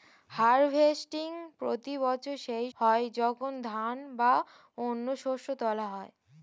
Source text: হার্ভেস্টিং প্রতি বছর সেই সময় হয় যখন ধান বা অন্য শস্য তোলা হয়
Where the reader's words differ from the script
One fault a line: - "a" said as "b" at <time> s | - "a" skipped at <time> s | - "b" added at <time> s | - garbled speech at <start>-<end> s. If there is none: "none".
- "সময়" skipped at 2.7 s